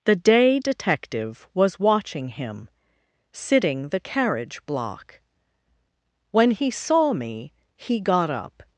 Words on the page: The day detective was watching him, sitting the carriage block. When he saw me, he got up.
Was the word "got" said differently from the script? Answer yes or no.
no